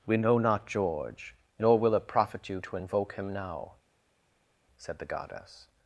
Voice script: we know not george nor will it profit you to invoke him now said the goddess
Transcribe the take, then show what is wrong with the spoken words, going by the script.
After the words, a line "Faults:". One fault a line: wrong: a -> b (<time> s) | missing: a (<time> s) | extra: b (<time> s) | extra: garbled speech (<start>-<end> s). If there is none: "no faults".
we know not george nor will it profit you to invoke him now said the goddess
Faults:
no faults